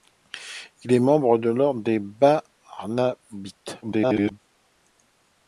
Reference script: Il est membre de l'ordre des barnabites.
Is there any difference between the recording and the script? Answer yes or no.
yes